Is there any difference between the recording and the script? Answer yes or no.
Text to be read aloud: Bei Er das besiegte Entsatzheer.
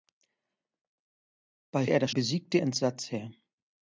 no